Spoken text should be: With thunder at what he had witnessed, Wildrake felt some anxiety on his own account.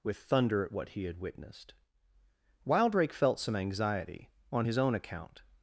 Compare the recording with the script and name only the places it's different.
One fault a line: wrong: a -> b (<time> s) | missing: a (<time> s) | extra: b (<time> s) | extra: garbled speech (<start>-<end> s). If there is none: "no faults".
no faults